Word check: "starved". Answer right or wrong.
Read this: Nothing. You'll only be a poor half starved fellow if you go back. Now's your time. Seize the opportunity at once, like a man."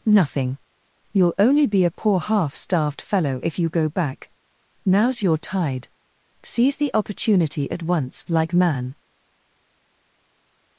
right